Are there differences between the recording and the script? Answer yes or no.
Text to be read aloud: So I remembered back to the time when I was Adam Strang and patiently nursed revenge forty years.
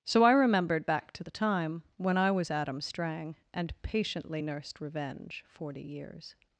no